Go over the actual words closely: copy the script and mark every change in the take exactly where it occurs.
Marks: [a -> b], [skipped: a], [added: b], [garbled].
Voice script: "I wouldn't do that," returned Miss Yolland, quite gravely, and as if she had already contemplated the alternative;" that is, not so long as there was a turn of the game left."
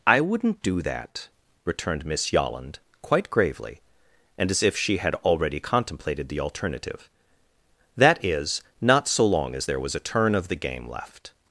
"I wouldn't do that," returned Miss Yolland, quite gravely, and as if she had already contemplated the alternative;" that is, not so long as there was a turn of the game left."